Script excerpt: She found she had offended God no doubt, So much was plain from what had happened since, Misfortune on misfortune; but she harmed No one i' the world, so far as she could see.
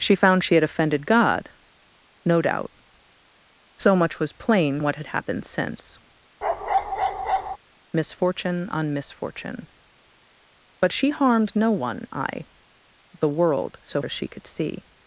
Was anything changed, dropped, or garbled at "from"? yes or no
yes